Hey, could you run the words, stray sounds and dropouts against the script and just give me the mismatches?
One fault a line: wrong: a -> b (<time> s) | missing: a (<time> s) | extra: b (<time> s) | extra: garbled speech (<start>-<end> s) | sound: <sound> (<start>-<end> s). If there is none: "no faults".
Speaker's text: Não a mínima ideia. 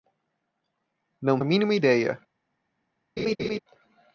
sound: laugh (3.2-3.6 s)